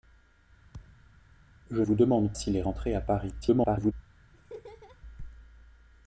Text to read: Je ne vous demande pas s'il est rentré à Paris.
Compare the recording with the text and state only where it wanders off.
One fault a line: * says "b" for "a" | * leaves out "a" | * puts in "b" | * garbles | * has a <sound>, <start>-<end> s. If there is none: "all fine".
* has a thud, 0.7-1.3 s
* leaves out "ne"
* leaves out "pas"
* garbles
* has a laugh, 4.3-5.0 s